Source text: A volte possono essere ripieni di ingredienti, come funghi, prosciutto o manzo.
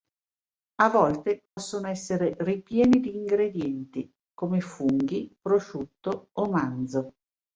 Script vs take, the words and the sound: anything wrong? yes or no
yes